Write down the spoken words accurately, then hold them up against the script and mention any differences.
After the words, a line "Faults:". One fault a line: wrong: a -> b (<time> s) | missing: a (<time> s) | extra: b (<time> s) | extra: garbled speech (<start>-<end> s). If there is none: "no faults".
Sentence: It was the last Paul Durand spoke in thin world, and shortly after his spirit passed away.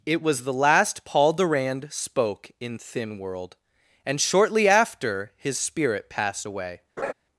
It was the last Paul Durand spoke in thin world, and shortly after his spirit passed away.
Faults:
no faults